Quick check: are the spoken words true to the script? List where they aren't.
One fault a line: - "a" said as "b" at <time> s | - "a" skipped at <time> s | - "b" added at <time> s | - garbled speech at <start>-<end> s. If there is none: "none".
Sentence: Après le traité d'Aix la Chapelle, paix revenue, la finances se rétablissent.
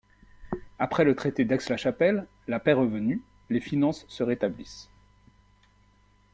- "la" added at 2.5 s
- "la" said as "les" at 3.5 s